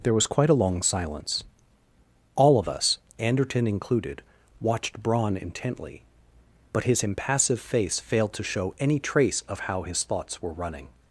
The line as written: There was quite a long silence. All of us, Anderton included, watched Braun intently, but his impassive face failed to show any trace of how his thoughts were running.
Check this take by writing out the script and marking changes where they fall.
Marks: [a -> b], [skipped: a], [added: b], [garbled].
There was quite a long silence. All of us, Anderton included, watched Braun intently, but his impassive face failed to show any trace of how his thoughts were running.